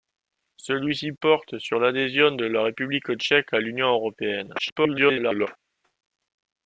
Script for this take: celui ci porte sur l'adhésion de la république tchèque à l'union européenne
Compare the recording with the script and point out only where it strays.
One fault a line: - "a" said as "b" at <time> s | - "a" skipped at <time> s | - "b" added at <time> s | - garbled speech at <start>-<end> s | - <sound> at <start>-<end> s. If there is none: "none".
- garbled speech at 4.6-5.5 s